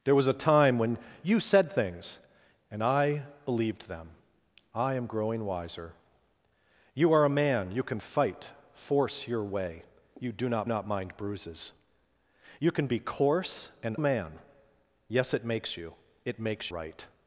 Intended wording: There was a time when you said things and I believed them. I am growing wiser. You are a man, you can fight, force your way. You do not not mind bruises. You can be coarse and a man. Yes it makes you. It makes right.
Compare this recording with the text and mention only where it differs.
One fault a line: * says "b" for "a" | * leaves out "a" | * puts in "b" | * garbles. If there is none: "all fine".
all fine